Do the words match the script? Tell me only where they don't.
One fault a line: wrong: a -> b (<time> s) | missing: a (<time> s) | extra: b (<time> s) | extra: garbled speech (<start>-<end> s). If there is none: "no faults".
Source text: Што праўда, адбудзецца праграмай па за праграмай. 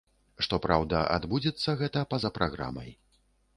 wrong: праграмай -> гэта (1.8 s)